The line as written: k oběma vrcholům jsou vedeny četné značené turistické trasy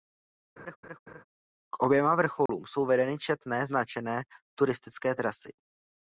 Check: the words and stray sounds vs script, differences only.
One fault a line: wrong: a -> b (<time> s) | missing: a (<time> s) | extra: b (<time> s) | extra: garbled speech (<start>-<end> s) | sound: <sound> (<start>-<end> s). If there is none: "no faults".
sound: laugh (0.6-1.2 s)
sound: dropout (2.5-2.5 s)